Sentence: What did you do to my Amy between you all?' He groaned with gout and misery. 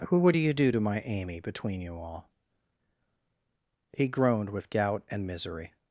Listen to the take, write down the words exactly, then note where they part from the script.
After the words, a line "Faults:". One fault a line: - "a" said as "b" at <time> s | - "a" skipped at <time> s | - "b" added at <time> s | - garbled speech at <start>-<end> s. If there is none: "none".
Who would you do to my Amy between you all?' He groaned with gout and misery.
Faults:
- "What did" said as "Who would" at 0.1 s